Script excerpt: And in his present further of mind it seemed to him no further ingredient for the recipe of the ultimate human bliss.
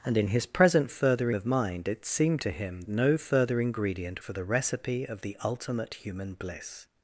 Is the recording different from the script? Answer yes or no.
no